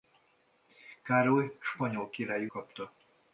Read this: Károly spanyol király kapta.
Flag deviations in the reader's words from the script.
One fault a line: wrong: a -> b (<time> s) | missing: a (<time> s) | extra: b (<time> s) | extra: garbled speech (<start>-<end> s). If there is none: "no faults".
no faults